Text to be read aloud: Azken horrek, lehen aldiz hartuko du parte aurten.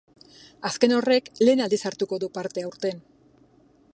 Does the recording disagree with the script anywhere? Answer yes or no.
no